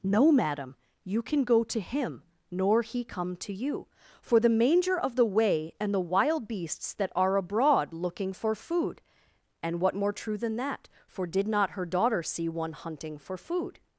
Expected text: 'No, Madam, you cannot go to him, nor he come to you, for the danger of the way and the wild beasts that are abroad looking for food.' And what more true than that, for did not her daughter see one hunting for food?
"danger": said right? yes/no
no